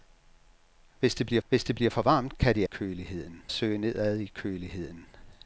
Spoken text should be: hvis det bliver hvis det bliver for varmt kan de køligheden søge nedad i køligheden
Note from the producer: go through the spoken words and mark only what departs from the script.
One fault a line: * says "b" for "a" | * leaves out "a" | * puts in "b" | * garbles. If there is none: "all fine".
all fine